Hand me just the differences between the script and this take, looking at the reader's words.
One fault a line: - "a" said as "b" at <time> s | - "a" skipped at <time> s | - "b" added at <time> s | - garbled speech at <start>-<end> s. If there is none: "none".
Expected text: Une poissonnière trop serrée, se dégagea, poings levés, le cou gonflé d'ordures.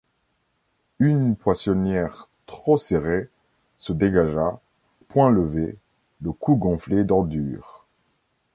none